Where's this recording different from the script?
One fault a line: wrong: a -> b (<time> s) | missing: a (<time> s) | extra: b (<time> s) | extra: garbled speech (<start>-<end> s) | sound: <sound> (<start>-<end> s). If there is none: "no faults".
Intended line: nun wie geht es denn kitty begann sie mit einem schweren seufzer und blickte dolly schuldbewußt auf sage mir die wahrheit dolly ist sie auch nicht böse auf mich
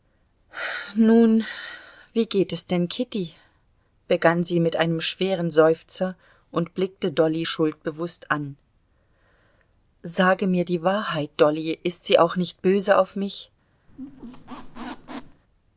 wrong: auf -> an (8.3 s)
sound: squeak (13.9-15.4 s)